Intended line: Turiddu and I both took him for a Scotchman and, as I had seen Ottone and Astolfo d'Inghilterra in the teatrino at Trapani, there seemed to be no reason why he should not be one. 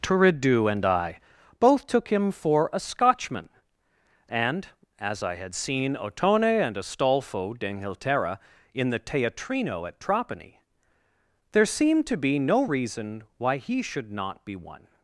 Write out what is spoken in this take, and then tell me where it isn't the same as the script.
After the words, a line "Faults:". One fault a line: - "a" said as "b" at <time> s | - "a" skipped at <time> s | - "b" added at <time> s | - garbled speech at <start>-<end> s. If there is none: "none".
Turiddu and I both took him for a Scotchman and, as I had seen Ottone and Astolfo d'Inghilterra in the teatrino at Trapani, there seemed to be no reason why he should not be one.
Faults:
none